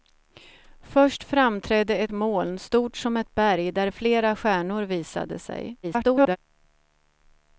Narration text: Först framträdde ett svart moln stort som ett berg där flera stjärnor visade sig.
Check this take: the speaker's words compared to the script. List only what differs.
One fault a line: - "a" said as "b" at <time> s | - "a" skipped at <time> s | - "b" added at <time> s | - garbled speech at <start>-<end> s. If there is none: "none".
- "svart" skipped at 2.1 s
- garbled speech at 5.8-6.4 s